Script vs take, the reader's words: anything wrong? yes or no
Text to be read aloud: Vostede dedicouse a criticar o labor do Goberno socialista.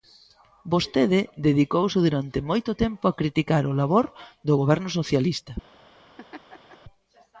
yes